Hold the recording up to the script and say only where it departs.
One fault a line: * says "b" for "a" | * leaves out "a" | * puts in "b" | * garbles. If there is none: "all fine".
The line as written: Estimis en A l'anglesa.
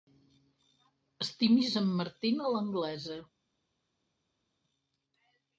* puts in "Martin"